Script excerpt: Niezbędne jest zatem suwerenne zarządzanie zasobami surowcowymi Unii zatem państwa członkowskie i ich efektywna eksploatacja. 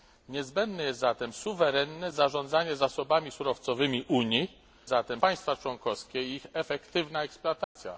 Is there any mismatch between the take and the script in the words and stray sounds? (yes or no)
yes